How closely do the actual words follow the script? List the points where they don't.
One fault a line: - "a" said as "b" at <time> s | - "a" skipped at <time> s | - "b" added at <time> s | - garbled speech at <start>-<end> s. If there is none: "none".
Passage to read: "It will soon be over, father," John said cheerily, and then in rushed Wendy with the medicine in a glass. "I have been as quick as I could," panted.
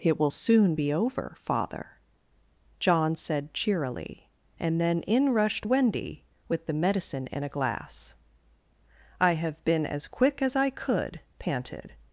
none